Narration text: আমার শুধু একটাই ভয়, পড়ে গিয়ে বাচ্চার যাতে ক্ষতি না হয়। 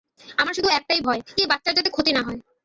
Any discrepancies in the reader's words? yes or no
yes